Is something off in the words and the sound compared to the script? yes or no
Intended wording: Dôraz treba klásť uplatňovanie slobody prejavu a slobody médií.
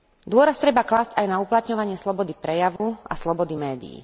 yes